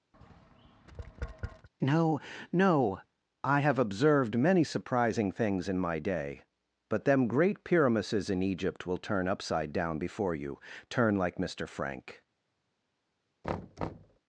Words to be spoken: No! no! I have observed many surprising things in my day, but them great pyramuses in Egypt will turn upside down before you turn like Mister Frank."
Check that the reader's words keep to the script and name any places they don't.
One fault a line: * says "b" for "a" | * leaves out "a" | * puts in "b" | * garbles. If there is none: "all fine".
all fine